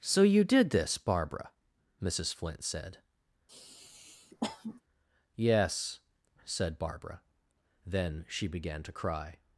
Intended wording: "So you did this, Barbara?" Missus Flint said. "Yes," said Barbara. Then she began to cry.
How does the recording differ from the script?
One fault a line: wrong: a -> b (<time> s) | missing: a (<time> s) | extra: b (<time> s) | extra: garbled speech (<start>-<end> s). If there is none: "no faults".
no faults